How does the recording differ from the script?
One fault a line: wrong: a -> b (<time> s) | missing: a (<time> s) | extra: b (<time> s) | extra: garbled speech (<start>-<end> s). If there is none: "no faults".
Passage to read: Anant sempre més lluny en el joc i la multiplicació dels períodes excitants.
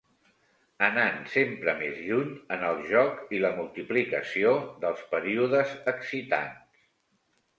no faults